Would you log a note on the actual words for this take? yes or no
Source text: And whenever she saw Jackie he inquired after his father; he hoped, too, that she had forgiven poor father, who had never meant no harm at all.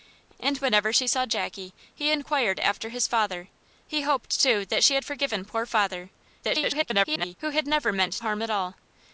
yes